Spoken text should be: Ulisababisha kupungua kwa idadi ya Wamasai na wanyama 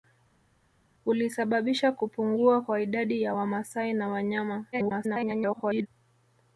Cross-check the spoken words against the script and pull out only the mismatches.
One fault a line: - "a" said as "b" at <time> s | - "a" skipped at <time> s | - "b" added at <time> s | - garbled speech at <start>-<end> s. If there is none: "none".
- garbled speech at 4.7-5.9 s